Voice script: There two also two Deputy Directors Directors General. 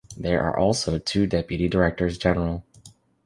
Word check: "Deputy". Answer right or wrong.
right